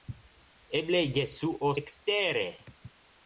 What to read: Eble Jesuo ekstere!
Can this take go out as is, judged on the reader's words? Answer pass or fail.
pass